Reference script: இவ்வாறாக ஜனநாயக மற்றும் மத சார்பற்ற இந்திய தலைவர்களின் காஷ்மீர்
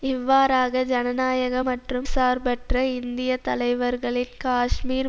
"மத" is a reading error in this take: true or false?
true